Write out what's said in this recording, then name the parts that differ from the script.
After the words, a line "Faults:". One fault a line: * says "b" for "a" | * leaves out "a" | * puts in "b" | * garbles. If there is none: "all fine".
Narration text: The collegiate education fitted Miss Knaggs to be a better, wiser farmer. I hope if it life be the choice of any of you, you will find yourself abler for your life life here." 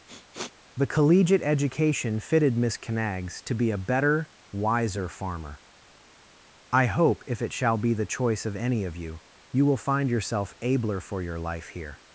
The collegiate education fitted Miss Knaggs to be a better, wiser farmer. I hope if it shall be the choice of any of you, you will find yourself abler for your life here."
Faults:
* says "shall" for "life"
* leaves out "life"